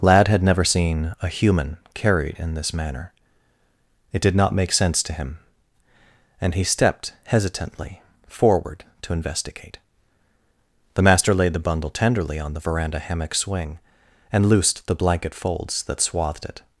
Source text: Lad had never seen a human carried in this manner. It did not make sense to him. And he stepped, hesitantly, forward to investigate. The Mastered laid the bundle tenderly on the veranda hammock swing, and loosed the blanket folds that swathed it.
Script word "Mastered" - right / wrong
wrong